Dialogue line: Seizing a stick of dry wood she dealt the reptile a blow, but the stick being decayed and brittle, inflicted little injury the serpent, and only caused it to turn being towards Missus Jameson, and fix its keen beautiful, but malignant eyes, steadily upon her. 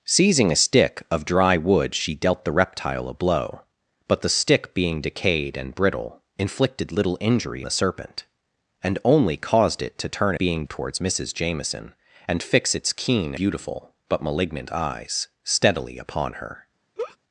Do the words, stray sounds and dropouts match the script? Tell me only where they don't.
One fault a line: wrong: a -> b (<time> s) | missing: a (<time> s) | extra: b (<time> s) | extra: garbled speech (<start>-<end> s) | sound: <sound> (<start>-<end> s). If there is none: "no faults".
sound: laugh (17.0-17.2 s)